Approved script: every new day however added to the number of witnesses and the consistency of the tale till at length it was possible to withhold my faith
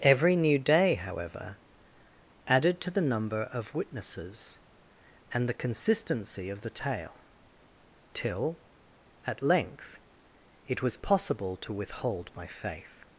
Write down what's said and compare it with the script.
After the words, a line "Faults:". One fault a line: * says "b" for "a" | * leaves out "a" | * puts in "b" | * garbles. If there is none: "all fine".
every new day however added to the number of witnesses and the consistency of the tale till at length it was possible to withhold my faith
Faults:
all fine